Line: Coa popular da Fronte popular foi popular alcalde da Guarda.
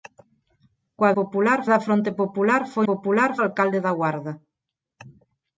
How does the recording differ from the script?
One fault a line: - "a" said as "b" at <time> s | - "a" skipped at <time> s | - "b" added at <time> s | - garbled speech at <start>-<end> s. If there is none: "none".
none